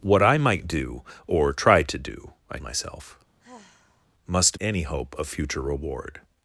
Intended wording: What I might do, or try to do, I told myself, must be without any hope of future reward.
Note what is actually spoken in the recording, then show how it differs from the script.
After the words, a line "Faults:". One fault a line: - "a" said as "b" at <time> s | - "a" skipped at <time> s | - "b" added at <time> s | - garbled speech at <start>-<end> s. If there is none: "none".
What I might do, or try to do, I myself, must any hope of future reward.
Faults:
- "told" skipped at 2.6 s
- "be without" skipped at 4.6 s